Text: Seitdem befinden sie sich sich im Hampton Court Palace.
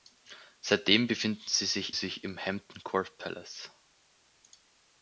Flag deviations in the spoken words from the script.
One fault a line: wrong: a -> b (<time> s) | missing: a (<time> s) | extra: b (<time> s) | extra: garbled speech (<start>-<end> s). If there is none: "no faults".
no faults